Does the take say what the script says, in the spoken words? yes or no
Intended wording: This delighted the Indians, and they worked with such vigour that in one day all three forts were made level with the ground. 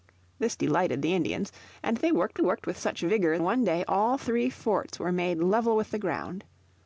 no